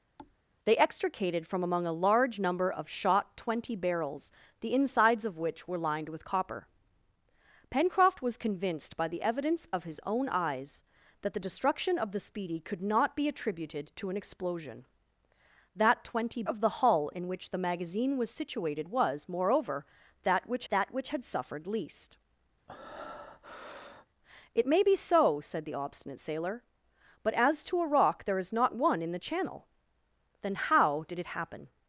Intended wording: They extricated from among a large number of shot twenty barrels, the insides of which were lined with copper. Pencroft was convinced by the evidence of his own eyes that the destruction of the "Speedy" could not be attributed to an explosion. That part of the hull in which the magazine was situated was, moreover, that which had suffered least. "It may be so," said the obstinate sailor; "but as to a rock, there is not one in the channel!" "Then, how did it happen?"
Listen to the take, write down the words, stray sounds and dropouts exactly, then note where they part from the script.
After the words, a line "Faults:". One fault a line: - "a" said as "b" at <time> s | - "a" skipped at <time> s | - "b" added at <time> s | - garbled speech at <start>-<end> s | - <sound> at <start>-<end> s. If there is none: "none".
They extricated from among a large number of shot twenty barrels, the insides of which were lined with copper. Pencroft was convinced by the evidence of his own eyes that the destruction of the "Speedy" could not be attributed to an explosion. That twenty of the hull in which the magazine was situated was, moreover, that which that which had suffered least. "It may be so," said the obstinate sailor; "but as to a rock, there is not one in the channel!" "Then, how did it happen?"
Faults:
- thud at 0.2-0.4 s
- "part" said as "twenty" at 16.0 s
- "that which" added at 20.7 s
- breath at 22.7-24.1 s